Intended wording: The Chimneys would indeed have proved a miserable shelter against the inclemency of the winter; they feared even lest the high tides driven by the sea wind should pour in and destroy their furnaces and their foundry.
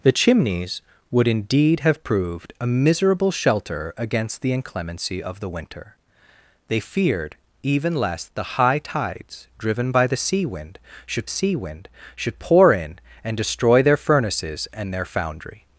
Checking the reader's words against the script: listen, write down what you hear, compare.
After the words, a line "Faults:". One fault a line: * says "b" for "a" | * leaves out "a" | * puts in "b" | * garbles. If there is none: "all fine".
The Chimneys would indeed have proved a miserable shelter against the inclemency of the winter; they feared even lest the high tides driven by the sea wind should sea wind should pour in and destroy their furnaces and their foundry.
Faults:
* puts in "sea wind should"